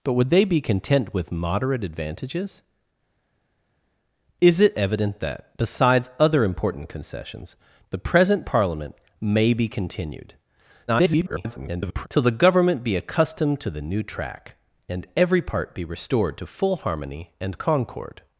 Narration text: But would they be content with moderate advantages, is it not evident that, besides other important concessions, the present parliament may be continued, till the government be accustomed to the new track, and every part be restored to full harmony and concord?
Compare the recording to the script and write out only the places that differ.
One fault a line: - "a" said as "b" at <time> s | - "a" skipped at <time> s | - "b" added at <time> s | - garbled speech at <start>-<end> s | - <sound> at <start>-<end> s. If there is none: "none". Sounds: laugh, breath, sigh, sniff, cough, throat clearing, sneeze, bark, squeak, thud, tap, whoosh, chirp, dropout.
- "not" skipped at 4.8 s
- garbled speech at 10.9-12.1 s